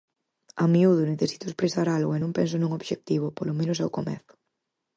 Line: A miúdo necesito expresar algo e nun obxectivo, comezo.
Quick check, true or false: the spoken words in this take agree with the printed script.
false